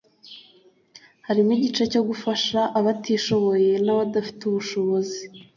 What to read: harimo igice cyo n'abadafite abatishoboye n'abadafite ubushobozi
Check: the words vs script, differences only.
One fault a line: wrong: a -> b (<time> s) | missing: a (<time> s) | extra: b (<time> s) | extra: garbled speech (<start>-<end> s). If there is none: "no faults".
wrong: n'abadafite -> gufasha (2.1 s)